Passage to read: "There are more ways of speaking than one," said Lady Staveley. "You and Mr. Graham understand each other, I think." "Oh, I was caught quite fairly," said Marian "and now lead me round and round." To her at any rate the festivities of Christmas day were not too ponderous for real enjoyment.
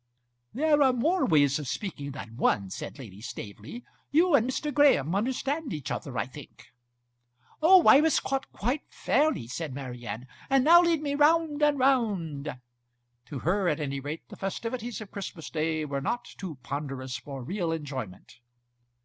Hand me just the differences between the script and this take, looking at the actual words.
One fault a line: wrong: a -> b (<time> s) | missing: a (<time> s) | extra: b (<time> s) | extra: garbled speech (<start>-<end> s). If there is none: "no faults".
no faults